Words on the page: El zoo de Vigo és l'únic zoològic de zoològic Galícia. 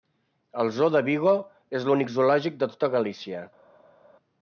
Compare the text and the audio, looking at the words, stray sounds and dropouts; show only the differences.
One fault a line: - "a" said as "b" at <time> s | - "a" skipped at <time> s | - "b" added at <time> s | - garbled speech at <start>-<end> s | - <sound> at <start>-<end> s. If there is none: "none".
- "zoològic" said as "tota" at 2.7 s